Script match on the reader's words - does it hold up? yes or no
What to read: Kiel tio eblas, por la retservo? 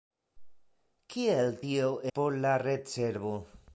no